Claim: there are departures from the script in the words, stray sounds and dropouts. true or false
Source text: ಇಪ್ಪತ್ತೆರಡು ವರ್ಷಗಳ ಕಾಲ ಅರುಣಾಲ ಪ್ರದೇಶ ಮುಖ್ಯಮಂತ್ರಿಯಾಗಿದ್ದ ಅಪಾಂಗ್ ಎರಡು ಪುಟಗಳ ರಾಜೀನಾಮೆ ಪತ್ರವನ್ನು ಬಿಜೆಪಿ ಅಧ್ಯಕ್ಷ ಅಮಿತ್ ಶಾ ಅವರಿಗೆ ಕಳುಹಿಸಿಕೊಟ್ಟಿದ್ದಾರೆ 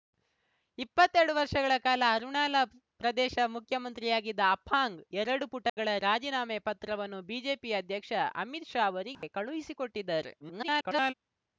true